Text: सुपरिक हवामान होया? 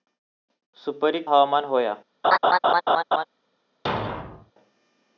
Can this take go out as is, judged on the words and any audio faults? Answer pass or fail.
fail